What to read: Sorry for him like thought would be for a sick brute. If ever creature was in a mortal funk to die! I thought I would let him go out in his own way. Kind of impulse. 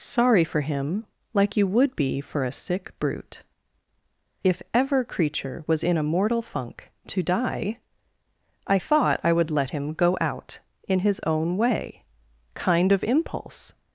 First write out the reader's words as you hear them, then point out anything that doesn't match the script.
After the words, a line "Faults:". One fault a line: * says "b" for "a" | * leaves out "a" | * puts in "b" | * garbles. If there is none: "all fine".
Sorry for him like you would be for a sick brute. If ever creature was in a mortal funk to die! I thought I would let him go out in his own way. Kind of impulse.
Faults:
* says "you" for "thought"